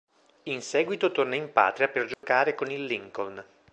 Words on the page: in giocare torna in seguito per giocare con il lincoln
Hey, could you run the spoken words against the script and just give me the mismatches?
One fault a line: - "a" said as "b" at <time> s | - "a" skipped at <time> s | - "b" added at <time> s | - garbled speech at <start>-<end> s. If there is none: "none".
- "giocare" said as "seguito" at 0.6 s
- "seguito" said as "patria" at 1.5 s